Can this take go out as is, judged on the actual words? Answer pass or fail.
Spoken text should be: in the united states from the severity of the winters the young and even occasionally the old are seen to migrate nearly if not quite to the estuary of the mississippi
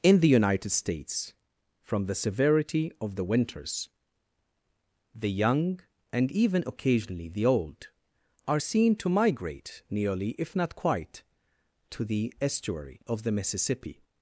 pass